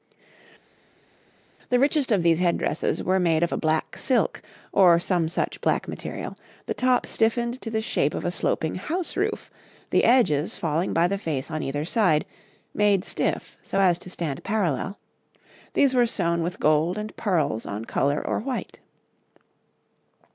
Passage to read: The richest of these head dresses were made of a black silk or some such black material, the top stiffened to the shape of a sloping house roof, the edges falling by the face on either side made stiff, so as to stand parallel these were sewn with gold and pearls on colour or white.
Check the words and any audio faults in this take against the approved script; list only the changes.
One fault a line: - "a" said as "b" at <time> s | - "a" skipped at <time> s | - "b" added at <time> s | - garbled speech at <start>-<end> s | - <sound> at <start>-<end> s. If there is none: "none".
none